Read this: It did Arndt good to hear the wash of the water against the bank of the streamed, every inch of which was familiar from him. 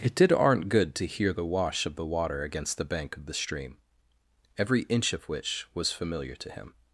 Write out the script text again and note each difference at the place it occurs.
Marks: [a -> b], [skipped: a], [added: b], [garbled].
It did Arndt good to hear the wash of the water against the bank of the [streamed, -> stream] every inch of which was familiar [from -> to] him.